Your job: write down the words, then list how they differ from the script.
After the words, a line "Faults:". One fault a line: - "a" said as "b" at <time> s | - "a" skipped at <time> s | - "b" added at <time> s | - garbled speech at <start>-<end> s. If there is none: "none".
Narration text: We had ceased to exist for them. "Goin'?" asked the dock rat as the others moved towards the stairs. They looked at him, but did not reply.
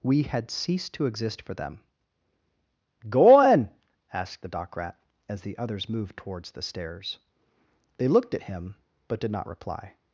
We had ceased to exist for them. "Goin'?" asked the dock rat as the others moved towards the stairs. They looked at him, but did not reply.
Faults:
none